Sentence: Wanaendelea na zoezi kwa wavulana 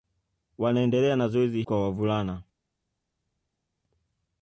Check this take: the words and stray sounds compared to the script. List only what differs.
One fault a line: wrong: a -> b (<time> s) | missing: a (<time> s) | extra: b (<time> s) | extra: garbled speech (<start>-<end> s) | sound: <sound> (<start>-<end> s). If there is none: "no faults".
no faults